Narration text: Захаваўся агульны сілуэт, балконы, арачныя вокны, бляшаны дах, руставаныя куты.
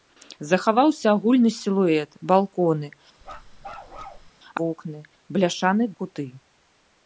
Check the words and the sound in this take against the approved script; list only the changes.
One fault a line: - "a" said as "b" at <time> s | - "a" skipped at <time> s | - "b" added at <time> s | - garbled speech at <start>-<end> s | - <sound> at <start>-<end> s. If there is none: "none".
- "арачныя" skipped at 2.9 s
- bark at 3.2-4.3 s
- "дах руставаныя" skipped at 5.8 s